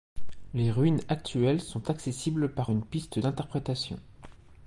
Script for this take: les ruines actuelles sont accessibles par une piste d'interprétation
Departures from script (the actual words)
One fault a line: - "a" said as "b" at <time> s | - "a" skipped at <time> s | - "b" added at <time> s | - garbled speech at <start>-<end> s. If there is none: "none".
none